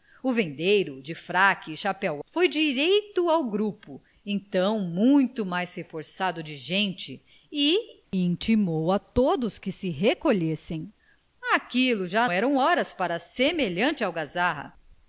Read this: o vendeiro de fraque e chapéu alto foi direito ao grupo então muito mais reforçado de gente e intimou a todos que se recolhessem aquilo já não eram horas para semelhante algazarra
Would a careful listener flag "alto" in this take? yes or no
yes